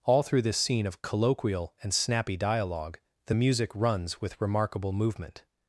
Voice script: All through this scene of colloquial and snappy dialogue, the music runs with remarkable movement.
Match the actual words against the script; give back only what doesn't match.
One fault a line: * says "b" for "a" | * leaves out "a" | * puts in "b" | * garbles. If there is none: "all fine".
all fine